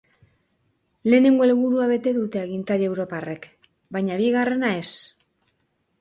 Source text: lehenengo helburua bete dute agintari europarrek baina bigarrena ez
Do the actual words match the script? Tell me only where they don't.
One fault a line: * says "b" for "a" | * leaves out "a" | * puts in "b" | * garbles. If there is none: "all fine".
all fine